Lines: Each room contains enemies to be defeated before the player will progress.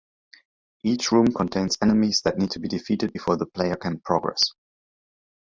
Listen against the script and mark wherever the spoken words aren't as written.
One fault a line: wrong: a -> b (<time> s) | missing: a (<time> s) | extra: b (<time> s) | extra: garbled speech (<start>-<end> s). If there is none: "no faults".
extra: that need (2.2 s)
wrong: will -> can (3.8 s)